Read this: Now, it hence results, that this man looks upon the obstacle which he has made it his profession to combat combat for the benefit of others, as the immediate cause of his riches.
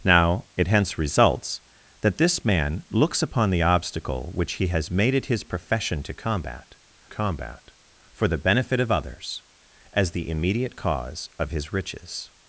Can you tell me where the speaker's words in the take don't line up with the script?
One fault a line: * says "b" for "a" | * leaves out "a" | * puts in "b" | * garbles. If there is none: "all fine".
all fine